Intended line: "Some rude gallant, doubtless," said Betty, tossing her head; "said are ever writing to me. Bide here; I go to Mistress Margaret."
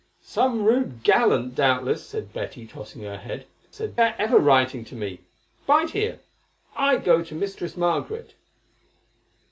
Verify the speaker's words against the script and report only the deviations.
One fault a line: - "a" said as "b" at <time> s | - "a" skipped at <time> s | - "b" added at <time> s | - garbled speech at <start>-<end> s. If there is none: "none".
none